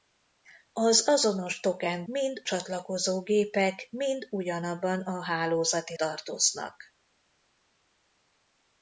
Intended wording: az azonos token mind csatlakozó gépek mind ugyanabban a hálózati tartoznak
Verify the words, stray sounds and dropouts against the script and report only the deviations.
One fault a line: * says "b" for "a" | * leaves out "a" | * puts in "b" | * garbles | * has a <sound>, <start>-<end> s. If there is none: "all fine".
all fine